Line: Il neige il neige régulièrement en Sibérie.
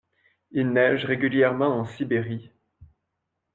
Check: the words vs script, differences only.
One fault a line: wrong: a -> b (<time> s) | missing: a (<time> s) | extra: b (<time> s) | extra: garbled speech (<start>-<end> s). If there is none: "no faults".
missing: il neige (1.1 s)